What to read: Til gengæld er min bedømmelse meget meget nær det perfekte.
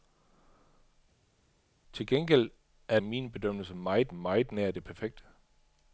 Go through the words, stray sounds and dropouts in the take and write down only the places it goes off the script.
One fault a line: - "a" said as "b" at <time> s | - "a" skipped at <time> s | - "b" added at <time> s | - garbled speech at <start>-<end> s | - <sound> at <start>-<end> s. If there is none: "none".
none